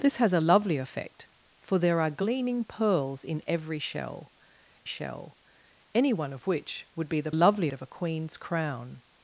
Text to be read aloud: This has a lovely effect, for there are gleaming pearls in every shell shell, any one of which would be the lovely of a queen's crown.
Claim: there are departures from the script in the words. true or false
false